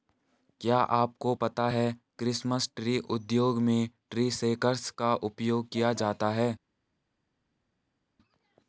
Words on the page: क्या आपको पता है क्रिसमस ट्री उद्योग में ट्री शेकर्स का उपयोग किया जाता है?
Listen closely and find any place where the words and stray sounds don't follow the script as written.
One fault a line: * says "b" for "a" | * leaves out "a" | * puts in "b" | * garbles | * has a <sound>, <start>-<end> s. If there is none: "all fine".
all fine